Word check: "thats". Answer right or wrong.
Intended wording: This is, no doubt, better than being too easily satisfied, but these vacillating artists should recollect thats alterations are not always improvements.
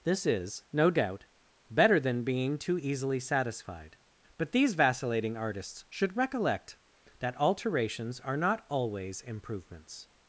wrong